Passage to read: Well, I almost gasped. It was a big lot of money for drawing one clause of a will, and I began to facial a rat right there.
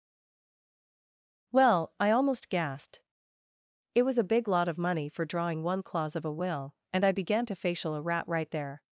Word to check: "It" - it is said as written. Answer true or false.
true